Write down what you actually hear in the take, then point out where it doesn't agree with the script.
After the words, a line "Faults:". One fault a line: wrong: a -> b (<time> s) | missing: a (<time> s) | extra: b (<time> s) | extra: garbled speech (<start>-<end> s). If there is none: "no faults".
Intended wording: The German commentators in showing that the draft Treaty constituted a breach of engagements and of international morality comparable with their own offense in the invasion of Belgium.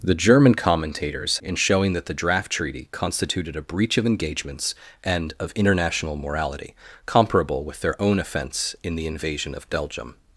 The German commentators in showing that the draft Treaty constituted a breach of engagements and of international morality comparable with their own offense in the invasion of Belgium.
Faults:
no faults